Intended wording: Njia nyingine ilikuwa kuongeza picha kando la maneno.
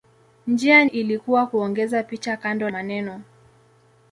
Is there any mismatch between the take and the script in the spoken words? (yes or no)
yes